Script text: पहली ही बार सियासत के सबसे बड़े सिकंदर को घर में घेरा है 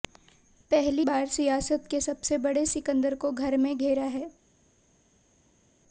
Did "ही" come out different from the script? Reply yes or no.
yes